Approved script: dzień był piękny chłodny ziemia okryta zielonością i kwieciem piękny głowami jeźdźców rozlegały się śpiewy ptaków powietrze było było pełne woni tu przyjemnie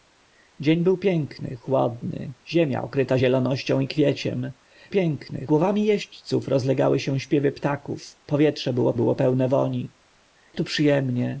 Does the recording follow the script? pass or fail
pass